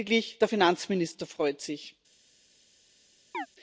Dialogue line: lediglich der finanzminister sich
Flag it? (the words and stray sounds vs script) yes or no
yes